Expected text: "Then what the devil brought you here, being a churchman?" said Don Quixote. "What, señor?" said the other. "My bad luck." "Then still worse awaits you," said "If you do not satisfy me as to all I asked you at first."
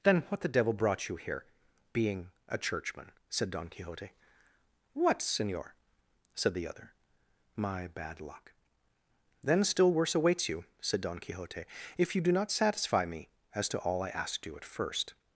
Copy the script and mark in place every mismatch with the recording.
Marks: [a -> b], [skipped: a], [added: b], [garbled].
"Then what the devil brought you here, being a churchman?" said Don Quixote. "What, señor?" said the other. "My bad luck." "Then still worse awaits you," said [added: Don Quixote] "If you do not satisfy me as to all I asked you at first."